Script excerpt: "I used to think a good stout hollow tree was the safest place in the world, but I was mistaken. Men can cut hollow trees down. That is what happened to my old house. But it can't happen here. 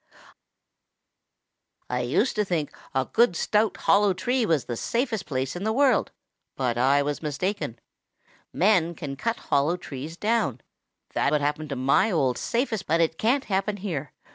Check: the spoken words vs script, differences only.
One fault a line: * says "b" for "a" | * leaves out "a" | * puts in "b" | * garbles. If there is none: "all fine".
* leaves out "is"
* says "safest" for "house"